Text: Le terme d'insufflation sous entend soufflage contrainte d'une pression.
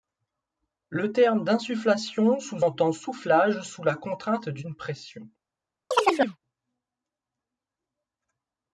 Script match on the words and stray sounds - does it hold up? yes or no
no